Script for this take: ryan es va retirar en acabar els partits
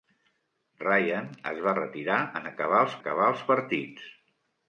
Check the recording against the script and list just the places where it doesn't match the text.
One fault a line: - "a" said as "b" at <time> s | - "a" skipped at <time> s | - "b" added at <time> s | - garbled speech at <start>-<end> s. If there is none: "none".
- "acabar els" added at 3.0 s